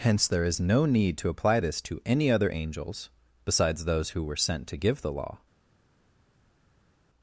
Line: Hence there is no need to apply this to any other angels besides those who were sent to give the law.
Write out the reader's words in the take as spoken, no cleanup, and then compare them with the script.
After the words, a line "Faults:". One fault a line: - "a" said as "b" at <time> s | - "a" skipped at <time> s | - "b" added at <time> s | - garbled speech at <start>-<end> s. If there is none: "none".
Hence there is no need to apply this to any other angels besides those who were sent to give the law.
Faults:
none